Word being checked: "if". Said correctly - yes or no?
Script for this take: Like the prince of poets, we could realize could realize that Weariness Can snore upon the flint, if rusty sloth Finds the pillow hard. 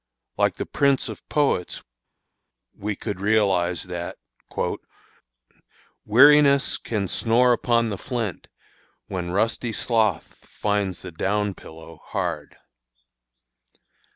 no